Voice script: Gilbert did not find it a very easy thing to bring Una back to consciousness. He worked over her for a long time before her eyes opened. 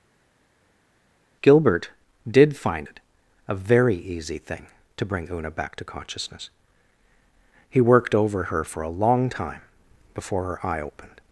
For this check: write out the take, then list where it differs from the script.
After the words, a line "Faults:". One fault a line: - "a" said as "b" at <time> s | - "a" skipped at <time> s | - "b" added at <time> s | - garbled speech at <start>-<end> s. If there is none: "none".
Gilbert did find it a very easy thing to bring Una back to consciousness. He worked over her for a long time before her eye opened.
Faults:
- "not" skipped at 2.6 s
- "eyes" said as "eye" at 10.7 s